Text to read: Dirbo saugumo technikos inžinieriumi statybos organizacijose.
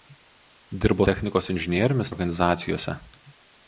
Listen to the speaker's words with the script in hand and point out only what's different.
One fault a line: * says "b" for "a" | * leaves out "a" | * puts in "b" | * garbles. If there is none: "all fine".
* leaves out "saugumo"
* leaves out "statybos"